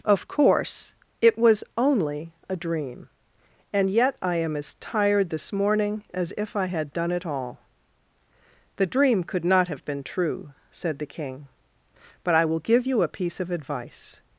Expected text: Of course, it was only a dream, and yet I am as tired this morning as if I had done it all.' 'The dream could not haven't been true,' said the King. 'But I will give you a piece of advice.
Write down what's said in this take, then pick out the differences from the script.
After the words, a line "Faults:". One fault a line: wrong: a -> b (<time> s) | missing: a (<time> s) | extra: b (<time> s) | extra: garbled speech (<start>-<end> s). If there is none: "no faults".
Of course, it was only a dream, and yet I am as tired this morning as if I had done it all.' 'The dream could not have been true,' said the King. 'But I will give you a piece of advice.
Faults:
wrong: haven't -> have (9.7 s)